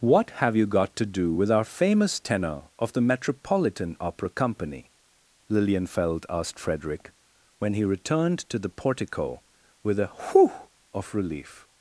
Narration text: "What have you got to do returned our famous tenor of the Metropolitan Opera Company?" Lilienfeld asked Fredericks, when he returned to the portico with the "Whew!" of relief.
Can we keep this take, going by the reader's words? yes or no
no